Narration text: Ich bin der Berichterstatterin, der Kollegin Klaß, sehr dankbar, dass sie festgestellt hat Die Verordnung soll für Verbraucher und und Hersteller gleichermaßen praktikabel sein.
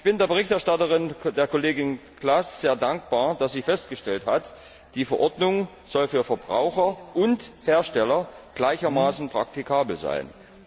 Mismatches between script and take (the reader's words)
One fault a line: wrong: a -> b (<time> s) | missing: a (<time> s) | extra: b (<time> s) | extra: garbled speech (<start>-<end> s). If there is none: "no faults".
missing: und (7.5 s)